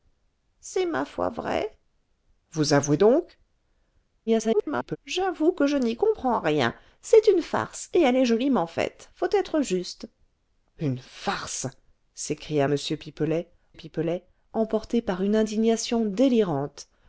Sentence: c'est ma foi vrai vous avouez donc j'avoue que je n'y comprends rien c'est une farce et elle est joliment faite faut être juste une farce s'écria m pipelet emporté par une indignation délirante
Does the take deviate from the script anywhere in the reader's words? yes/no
yes